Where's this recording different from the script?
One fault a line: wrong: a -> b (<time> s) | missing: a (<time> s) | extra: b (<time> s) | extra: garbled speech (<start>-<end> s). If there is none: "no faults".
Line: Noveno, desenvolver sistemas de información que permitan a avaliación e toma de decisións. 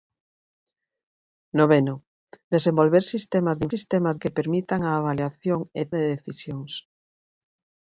wrong: información -> sistemas (3.7 s)
missing: toma (5.8 s)